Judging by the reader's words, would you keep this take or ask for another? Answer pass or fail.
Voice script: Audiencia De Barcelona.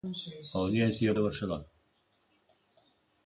pass